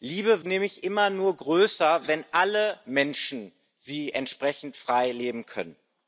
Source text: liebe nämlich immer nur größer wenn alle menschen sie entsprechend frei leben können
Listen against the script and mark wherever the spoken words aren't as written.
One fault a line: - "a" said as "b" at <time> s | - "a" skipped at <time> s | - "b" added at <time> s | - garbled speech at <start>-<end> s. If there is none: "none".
none